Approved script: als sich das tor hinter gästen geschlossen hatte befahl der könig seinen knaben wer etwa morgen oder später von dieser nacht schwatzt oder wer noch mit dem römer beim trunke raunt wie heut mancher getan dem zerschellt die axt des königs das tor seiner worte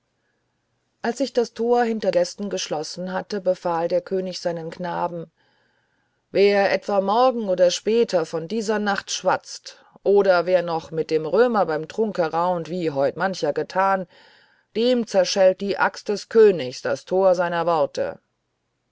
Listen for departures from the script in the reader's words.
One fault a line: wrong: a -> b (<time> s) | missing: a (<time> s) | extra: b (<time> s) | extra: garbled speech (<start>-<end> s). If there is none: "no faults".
no faults